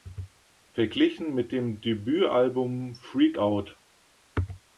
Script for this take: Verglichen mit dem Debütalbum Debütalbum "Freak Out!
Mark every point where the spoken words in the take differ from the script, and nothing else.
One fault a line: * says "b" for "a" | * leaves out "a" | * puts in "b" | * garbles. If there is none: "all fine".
* leaves out "Debütalbum"